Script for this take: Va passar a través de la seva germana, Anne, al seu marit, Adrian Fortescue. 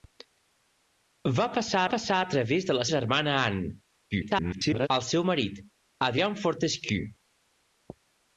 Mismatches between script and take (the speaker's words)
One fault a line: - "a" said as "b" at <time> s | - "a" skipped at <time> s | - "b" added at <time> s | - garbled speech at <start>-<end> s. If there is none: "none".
- "passar" added at 1.9 s
- "seva" skipped at 2.8 s
- garbled speech at 4.1-4.9 s